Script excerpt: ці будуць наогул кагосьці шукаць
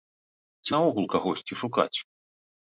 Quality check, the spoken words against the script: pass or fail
fail